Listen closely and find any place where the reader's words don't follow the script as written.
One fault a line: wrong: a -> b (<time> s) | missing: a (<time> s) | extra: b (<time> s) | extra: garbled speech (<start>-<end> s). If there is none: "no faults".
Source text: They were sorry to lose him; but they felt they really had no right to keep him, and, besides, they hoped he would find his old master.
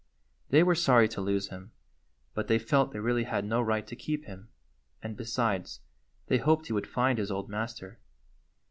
no faults